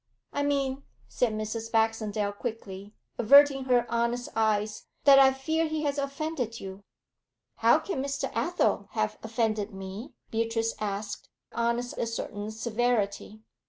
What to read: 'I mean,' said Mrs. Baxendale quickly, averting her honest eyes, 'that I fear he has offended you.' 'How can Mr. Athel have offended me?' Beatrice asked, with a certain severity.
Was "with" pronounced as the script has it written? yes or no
no